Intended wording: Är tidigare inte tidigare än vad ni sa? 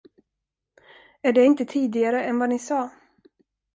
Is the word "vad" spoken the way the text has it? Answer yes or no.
yes